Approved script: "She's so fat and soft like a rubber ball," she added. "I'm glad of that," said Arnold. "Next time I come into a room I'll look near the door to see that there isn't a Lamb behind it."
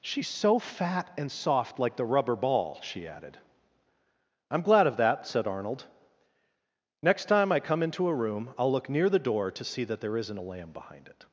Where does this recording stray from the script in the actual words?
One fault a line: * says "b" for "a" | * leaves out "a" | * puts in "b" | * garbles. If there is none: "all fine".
* says "the" for "a"